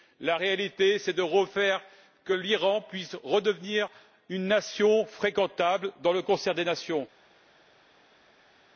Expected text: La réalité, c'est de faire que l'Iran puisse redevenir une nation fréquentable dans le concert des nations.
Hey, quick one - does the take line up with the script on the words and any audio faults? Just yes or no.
yes